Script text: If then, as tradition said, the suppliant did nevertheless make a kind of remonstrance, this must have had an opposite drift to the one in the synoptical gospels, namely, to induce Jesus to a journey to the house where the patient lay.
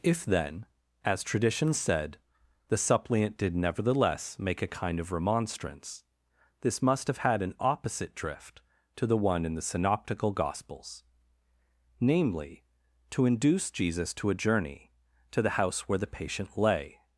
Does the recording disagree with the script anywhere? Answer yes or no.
no